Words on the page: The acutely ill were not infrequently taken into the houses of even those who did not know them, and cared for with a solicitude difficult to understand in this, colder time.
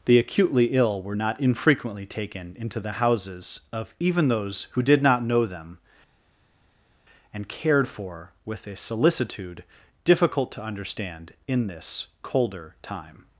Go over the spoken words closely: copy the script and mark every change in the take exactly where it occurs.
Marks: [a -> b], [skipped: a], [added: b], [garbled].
The acutely ill were not infrequently taken into the houses of even those who did not know them, and cared for with a solicitude difficult to understand in this, colder time.